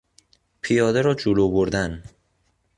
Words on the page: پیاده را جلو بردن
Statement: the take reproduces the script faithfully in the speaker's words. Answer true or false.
true